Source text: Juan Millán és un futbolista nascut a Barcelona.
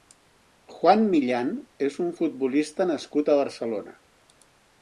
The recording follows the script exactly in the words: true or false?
true